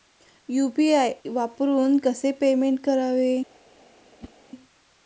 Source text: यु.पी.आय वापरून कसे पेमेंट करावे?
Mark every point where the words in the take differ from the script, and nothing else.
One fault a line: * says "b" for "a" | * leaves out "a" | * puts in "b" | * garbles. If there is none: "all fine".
all fine